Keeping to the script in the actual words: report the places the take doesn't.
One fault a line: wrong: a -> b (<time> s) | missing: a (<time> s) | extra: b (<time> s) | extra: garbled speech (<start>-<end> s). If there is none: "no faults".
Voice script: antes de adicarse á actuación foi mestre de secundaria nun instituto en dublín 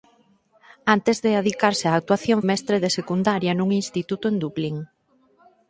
missing: foi (2.4 s)